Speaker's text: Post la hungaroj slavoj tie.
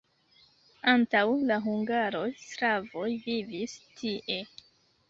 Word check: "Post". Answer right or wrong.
wrong